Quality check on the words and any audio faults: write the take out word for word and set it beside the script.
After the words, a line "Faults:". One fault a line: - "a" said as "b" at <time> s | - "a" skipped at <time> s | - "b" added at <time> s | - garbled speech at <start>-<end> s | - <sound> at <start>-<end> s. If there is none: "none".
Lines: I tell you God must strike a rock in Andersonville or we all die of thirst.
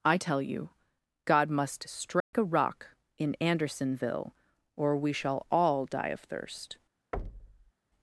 I tell you God must strike a rock in Andersonville or we shall all die of thirst.
Faults:
- dropout at 2.2-2.3 s
- "shall" added at 5.1 s
- thud at 7.1-7.7 s